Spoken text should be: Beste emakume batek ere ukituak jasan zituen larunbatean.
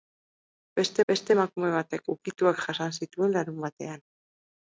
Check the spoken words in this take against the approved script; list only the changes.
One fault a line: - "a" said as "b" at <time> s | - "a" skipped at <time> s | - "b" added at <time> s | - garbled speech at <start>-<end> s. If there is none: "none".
- "beste" added at 1.1 s
- "ere" skipped at 2.0 s